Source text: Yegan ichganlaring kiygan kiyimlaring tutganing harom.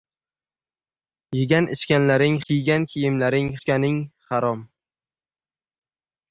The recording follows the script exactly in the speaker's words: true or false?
true